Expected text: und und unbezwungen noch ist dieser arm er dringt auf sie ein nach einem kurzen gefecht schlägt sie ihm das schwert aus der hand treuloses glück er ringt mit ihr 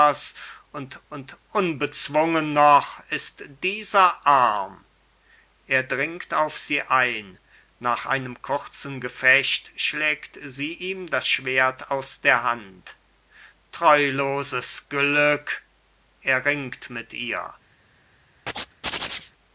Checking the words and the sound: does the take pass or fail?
fail